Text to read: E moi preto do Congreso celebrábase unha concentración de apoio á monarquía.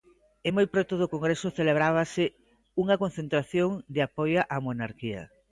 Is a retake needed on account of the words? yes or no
no